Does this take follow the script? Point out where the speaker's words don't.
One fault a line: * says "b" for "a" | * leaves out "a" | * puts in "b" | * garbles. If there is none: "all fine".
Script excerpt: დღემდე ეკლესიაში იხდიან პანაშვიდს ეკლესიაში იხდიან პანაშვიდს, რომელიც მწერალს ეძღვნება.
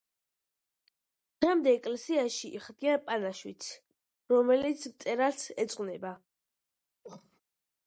* leaves out "ეკლესიაში იხდიან პანაშვიდს"